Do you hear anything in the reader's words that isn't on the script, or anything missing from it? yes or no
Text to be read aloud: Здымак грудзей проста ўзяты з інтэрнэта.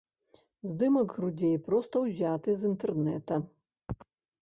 no